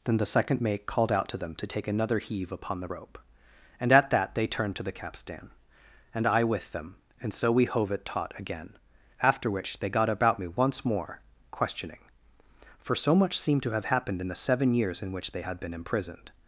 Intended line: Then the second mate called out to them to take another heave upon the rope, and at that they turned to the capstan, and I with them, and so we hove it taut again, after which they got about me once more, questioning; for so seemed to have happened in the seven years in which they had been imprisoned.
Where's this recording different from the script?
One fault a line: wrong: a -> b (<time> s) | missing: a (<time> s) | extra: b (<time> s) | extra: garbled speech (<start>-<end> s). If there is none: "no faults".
extra: much (13.1 s)